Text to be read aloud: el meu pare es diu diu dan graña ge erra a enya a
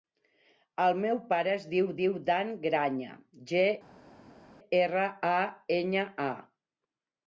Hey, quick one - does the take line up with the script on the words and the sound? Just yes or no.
yes